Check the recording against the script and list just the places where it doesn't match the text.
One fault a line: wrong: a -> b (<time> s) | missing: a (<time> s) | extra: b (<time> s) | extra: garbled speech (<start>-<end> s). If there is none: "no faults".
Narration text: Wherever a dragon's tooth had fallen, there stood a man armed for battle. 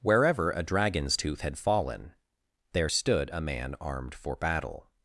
no faults